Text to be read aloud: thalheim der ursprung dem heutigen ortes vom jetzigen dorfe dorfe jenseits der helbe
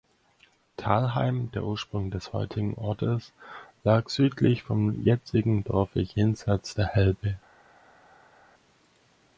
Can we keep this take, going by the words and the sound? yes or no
no